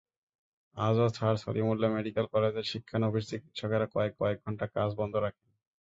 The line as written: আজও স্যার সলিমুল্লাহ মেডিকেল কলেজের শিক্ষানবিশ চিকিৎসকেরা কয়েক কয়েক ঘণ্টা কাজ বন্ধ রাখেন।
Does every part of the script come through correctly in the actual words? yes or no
yes